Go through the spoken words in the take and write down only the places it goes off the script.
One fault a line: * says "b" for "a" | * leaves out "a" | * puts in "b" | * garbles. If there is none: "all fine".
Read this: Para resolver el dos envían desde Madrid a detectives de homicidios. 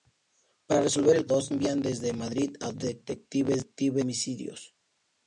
all fine